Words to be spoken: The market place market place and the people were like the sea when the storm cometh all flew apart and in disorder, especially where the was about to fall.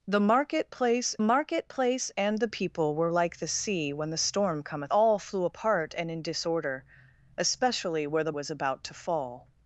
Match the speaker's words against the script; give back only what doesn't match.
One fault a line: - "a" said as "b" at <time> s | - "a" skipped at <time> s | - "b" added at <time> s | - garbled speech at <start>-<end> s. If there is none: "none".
none